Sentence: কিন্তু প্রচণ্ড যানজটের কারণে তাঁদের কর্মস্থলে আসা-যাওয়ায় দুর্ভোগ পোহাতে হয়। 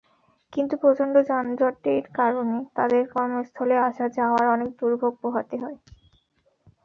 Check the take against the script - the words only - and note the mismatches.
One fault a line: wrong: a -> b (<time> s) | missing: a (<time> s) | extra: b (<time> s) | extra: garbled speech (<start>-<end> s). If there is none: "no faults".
extra: অনেক (4.5 s)